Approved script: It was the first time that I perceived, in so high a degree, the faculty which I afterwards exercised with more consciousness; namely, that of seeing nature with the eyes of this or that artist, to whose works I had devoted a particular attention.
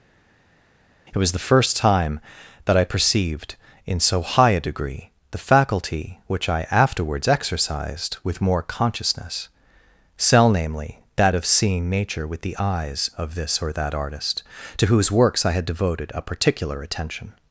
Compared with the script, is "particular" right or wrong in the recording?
right